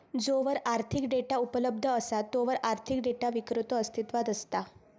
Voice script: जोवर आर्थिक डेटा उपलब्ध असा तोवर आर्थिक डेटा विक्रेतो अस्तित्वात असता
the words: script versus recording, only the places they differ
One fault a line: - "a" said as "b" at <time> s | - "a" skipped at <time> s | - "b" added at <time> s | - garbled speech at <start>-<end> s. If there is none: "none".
none